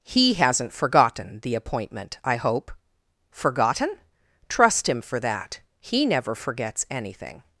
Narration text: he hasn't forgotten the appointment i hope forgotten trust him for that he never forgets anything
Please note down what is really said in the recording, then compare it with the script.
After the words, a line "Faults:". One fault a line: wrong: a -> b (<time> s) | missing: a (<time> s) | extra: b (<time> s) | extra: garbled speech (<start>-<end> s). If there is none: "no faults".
he hasn't forgotten the appointment i hope forgotten trust him for that he never forgets anything
Faults:
no faults